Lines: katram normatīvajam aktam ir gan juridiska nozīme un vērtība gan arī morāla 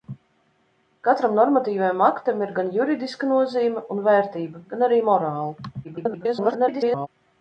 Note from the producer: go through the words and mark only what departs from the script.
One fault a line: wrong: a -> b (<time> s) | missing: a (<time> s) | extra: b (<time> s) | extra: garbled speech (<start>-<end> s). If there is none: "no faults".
extra: garbled speech (5.8-7.1 s)